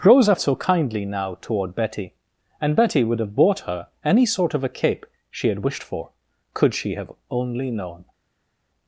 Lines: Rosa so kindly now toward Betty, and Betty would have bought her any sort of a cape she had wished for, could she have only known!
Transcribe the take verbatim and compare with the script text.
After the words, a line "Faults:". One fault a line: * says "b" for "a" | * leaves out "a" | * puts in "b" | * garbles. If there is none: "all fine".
Rosa so kindly now toward Betty, and Betty would have bought her any sort of a cape she had wished for, could she have only known!
Faults:
all fine